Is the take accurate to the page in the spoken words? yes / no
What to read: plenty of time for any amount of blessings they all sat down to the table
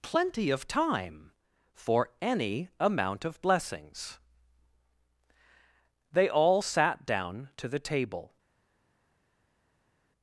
yes